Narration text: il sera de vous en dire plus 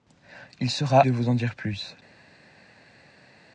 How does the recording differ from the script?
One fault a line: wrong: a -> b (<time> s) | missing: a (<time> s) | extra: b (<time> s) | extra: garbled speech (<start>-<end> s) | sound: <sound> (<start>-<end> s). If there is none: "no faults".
no faults